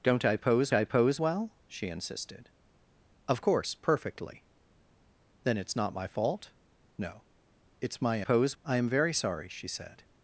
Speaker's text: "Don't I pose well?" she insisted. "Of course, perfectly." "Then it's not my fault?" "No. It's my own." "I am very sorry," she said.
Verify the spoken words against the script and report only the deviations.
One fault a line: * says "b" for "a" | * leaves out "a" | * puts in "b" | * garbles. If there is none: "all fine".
* puts in "I pose"
* says "pose" for "own"